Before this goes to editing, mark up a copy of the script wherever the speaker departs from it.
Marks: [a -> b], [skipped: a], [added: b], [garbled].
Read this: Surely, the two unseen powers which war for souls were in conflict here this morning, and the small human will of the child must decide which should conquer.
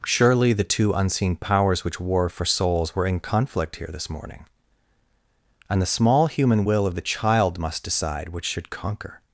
Surely, the two unseen powers which war for souls were in conflict here this morning, and the small human will of the child must decide which should conquer.